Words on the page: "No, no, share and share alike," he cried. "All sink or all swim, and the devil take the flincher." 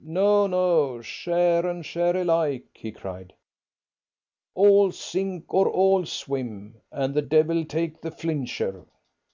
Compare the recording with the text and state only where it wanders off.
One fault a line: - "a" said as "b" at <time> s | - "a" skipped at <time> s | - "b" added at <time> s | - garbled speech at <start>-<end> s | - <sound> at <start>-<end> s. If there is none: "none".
none